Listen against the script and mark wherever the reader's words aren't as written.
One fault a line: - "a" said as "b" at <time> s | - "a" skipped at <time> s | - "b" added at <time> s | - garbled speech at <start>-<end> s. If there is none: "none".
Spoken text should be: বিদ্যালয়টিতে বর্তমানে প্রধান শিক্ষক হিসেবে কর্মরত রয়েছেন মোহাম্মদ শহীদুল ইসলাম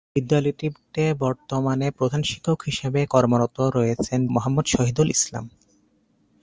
none